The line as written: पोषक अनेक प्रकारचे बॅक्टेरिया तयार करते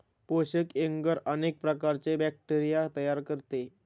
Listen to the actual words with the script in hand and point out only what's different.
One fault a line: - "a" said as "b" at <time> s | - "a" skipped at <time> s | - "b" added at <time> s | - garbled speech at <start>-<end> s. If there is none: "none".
- "एग्गर" added at 0.8 s